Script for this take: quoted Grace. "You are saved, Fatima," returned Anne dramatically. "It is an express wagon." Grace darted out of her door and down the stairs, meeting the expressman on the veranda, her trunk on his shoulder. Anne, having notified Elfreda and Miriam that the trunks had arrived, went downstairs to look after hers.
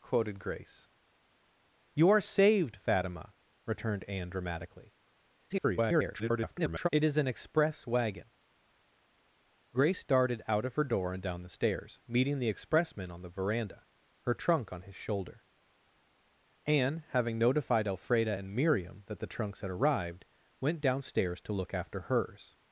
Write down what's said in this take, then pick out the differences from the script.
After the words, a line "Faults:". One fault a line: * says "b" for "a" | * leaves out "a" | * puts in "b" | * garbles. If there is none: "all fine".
quoted Grace. "You are saved, Fatima," returned Anne dramatically. [garbled] "It is an express wagon." Grace darted out of her door and down the stairs, meeting the expressman on the veranda, her trunk on his shoulder. Anne, having notified Elfreda and Miriam that the trunks had arrived, went downstairs to look after hers.
Faults:
* garbles